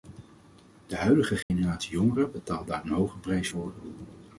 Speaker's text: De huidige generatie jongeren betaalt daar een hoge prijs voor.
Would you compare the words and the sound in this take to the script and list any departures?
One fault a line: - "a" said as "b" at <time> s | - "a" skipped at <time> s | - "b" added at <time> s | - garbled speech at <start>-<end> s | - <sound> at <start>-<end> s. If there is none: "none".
- dropout at 1.4-1.5 s